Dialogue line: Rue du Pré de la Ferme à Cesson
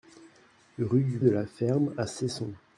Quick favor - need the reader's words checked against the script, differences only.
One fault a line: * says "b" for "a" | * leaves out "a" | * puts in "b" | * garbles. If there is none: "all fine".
* leaves out "Pré"